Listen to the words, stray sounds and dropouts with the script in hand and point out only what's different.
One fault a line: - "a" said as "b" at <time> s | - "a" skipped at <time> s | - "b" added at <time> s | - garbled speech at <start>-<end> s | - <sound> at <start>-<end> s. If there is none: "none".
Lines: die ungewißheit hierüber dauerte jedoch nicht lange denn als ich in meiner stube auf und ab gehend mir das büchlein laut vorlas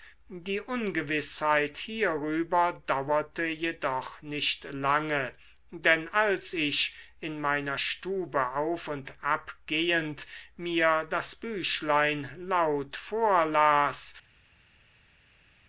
none